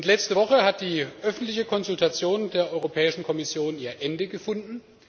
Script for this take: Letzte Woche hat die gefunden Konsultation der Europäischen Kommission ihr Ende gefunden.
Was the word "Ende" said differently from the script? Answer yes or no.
no